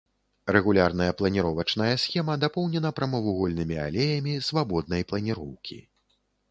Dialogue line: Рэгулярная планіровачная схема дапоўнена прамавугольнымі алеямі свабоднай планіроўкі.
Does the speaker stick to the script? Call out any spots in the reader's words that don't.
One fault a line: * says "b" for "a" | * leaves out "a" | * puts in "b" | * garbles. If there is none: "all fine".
all fine